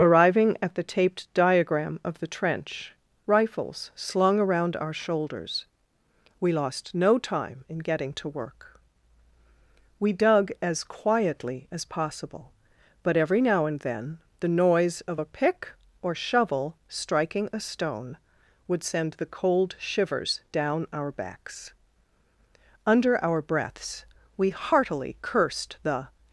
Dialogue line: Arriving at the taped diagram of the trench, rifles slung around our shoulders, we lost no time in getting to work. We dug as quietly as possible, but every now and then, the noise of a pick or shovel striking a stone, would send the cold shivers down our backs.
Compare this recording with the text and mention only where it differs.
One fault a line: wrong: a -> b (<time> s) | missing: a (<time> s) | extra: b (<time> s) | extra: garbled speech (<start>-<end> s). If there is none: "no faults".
extra: Under our breaths we heartily cursed the (22.9 s)